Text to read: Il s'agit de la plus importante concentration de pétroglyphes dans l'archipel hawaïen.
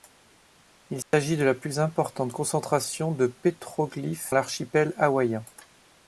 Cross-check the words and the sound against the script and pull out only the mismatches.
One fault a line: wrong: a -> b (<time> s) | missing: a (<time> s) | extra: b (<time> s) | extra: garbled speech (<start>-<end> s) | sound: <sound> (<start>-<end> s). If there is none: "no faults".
sound: dropout (1.0-1.1 s)
missing: dans (4.3 s)